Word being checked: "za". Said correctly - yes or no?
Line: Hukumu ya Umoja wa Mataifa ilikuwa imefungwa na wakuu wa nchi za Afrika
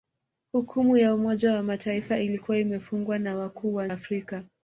no